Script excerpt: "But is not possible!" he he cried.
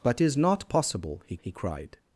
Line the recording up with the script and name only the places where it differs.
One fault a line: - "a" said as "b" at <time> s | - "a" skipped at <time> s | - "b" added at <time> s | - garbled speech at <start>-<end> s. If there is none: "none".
none